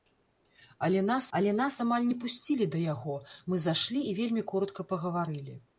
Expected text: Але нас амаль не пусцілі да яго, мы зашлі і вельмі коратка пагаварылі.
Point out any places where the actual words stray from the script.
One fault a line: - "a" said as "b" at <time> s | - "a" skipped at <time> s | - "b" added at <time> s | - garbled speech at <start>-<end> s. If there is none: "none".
- "але нас" added at 1.4 s